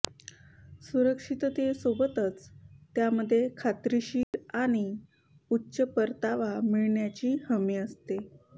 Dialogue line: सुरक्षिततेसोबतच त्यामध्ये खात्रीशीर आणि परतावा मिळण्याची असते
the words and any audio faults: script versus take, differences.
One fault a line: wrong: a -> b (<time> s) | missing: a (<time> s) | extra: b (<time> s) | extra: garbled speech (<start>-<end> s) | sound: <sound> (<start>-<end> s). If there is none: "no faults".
sound: dropout (4.2-4.3 s)
extra: उच्च (5.5 s)
extra: हमी (7.5 s)